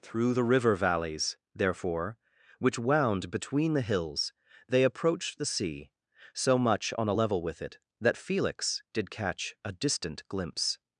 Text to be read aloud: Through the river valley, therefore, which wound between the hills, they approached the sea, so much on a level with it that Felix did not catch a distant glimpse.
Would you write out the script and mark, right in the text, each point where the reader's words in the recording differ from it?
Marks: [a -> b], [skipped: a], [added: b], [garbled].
Through the river [valley, -> valleys] therefore, which wound between the hills, they approached the sea, so much on a level with it that Felix did [skipped: not] catch a distant glimpse.